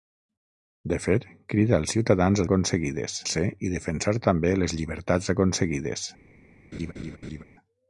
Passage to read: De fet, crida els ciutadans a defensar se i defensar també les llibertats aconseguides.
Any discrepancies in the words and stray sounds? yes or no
yes